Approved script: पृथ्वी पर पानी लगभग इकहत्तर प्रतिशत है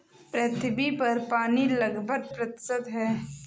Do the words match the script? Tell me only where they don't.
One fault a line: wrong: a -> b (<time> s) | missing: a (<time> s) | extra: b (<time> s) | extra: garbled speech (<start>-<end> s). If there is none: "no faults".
missing: इकहत्तर (2.3 s)